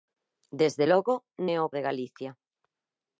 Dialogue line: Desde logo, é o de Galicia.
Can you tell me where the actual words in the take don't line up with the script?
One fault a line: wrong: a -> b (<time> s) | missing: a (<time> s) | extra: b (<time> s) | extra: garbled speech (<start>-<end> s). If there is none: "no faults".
no faults